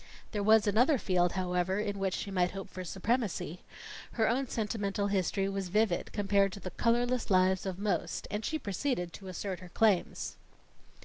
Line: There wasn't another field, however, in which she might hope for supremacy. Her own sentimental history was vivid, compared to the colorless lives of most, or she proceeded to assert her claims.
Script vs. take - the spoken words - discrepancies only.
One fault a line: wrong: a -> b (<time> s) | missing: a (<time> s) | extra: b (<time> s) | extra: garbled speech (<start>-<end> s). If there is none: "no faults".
wrong: wasn't -> was (0.4 s)
wrong: or -> and (8.3 s)